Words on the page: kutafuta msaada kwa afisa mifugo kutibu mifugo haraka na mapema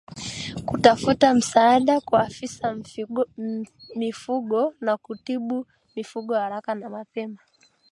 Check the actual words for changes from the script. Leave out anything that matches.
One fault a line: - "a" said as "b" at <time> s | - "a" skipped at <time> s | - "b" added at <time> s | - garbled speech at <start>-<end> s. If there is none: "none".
- "na" added at 4.8 s